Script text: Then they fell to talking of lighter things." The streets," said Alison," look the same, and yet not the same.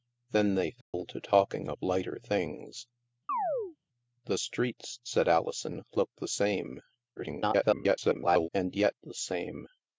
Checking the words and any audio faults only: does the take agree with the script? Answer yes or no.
no